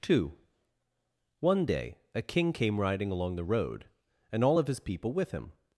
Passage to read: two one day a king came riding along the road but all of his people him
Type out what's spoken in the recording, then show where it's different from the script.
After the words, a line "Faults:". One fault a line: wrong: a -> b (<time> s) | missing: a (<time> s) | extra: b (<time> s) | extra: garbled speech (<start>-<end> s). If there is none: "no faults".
two one day a king came riding along the road and all of his people with him
Faults:
wrong: but -> and (4.3 s)
extra: with (5.1 s)